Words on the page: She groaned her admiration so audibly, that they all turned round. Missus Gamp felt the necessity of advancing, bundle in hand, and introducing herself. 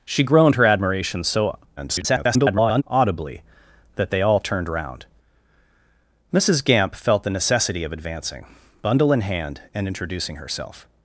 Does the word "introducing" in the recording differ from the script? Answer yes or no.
no